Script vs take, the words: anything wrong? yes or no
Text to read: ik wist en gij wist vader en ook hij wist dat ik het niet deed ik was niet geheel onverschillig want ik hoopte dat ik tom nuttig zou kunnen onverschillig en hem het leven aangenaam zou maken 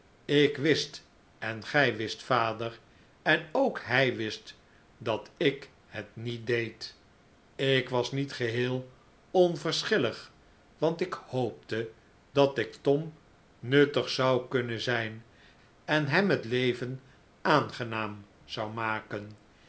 yes